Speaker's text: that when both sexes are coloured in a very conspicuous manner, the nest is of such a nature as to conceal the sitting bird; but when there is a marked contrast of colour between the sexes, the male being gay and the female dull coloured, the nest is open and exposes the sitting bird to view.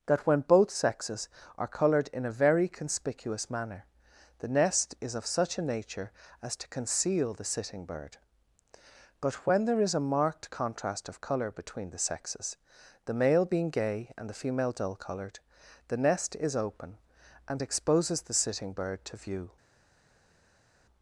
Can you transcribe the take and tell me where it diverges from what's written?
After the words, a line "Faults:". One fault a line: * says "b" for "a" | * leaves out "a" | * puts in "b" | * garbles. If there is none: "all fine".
that when both sexes are coloured in a very conspicuous manner, the nest is of such a nature as to conceal the sitting bird; but when there is a marked contrast of colour between the sexes, the male being gay and the female dull coloured, the nest is open and exposes the sitting bird to view.
Faults:
all fine